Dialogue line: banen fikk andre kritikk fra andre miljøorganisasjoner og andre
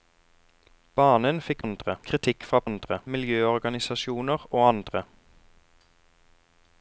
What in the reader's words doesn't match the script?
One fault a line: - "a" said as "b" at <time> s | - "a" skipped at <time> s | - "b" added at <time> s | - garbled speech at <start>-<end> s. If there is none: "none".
none